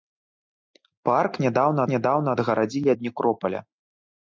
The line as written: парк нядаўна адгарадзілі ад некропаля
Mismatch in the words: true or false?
true